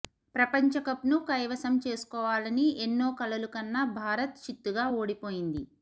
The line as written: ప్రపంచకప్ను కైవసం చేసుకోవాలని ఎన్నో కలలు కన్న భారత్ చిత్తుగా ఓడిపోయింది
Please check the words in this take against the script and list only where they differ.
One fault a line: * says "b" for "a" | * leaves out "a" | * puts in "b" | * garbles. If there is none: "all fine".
all fine